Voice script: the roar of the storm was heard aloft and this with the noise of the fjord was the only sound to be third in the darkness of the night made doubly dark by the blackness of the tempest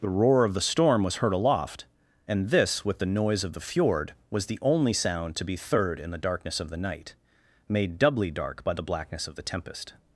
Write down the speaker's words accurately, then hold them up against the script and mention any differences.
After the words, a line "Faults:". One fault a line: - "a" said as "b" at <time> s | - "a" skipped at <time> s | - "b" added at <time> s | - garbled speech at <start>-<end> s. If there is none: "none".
the roar of the storm was heard aloft and this with the noise of the fjord was the only sound to be third in the darkness of the night made doubly dark by the blackness of the tempest
Faults:
none